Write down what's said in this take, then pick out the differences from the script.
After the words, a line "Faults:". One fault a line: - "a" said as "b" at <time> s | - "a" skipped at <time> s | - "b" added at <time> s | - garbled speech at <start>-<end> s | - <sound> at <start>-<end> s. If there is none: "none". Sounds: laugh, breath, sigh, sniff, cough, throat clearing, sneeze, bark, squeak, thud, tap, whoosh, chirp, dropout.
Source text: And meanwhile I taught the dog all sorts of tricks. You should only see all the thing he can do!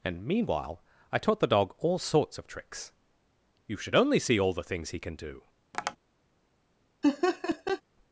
And meanwhile I taught the dog all sorts of tricks. You should only see all the things he can do!
Faults:
- "thing" said as "things" at 4.6 s
- tap at 5.7-6.0 s
- laugh at 7.0-7.8 s